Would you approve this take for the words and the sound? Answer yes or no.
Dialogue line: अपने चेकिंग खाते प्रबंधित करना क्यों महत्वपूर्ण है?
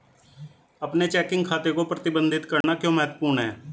no